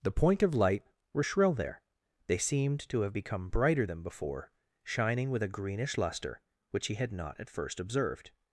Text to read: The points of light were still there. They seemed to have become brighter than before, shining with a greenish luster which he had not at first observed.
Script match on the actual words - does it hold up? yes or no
no